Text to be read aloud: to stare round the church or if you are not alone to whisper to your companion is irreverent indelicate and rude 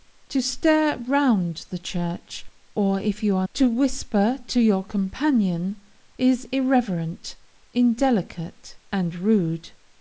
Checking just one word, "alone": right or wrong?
wrong